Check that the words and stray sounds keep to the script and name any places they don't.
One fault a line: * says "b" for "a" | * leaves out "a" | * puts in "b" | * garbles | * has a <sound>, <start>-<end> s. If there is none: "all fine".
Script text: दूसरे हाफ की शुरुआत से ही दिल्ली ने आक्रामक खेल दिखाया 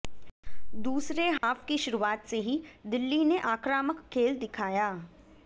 * has a dropout, 1.4-1.4 s